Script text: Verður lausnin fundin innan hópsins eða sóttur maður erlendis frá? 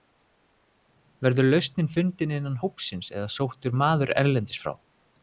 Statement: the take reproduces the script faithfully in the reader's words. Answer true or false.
true